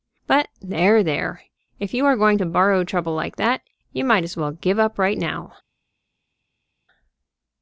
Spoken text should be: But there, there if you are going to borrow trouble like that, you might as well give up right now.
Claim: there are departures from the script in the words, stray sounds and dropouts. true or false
false